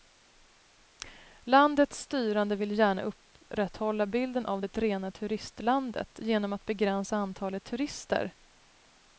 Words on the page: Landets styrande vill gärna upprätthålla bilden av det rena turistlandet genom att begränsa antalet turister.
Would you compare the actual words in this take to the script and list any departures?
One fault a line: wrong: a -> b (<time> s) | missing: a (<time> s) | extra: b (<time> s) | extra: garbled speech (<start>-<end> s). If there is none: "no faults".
no faults